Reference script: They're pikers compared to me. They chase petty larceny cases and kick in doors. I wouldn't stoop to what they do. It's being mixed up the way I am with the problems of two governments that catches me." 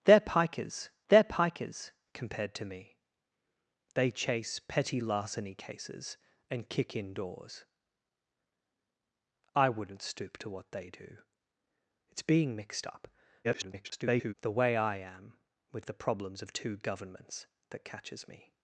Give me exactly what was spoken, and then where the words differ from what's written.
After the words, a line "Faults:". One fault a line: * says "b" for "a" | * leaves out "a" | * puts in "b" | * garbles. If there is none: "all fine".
They're pikers they're pikers compared to me. They chase petty larceny cases and kick in doors. I wouldn't stoop to what they do. It's being mixed up [garbled] the way I am with the problems of two governments that catches me."
Faults:
* puts in "they're pikers"
* garbles